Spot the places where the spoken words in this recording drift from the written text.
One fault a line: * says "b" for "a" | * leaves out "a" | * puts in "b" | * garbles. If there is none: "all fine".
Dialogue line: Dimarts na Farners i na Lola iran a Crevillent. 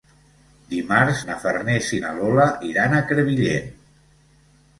all fine